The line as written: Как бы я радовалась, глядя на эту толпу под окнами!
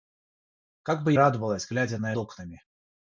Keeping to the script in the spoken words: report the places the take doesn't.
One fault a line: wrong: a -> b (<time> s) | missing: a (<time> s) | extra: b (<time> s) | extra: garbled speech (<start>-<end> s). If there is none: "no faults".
missing: я (1.1 s)
missing: эту толпу под (2.1 s)